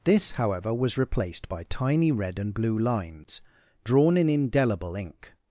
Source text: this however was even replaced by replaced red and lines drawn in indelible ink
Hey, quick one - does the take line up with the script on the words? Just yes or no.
no